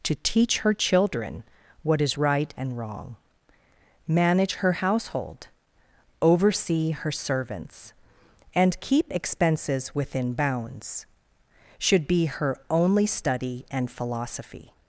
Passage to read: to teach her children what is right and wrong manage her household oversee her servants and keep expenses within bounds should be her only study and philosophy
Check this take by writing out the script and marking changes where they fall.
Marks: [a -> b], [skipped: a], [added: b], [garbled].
to teach her children what is right and wrong manage her household oversee her servants and keep expenses within bounds should be her only study and philosophy